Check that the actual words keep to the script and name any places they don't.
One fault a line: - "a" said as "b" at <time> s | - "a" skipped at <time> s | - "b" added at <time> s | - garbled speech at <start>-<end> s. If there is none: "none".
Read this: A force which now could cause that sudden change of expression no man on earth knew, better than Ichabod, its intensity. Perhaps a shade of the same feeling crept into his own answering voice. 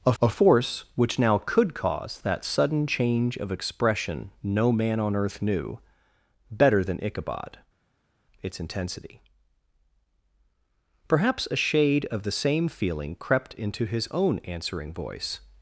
- "a" added at 0.2 s